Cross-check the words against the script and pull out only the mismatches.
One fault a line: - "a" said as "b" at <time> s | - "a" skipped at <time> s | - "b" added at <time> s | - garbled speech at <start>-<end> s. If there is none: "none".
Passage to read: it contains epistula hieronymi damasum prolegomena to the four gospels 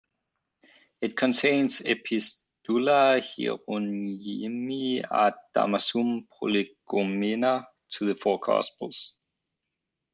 - "ad" added at 5.1 s